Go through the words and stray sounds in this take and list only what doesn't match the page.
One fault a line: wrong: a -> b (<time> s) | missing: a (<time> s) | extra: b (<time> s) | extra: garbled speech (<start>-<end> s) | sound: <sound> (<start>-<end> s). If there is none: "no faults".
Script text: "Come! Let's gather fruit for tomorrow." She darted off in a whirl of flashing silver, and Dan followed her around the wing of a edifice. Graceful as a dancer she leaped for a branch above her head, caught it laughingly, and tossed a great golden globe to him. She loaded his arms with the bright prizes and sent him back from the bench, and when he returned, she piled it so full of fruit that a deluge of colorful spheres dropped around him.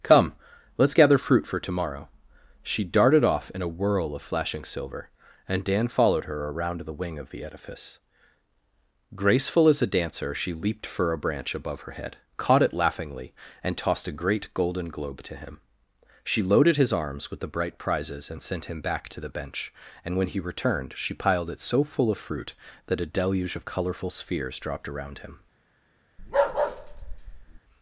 wrong: a -> the (7.3 s)
wrong: from -> to (19.1 s)
sound: bark (26.2-27.6 s)